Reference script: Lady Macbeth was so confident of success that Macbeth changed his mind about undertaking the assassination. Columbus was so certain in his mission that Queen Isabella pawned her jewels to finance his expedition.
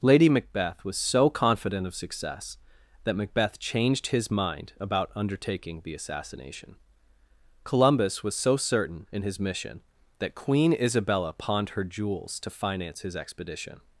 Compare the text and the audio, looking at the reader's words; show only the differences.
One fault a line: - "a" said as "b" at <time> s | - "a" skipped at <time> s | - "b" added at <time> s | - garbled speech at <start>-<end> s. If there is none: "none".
none